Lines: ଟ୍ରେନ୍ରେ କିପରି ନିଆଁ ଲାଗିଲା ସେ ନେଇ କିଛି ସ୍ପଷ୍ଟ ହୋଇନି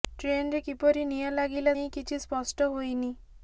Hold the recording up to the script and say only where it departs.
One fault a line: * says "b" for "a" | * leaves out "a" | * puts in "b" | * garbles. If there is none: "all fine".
* leaves out "ସେ"